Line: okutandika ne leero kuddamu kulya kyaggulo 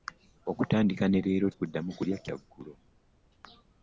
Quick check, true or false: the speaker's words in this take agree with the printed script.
true